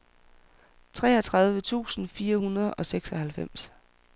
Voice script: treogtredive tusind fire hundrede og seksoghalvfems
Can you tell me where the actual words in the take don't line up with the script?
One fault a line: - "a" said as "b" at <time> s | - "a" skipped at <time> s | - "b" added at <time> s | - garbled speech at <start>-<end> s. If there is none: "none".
none